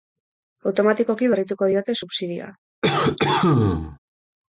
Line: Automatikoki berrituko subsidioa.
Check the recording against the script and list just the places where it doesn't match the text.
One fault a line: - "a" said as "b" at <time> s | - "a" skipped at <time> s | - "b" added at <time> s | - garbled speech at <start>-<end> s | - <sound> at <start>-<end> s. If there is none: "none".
- "diote" added at 1.7 s
- cough at 2.8-4.0 s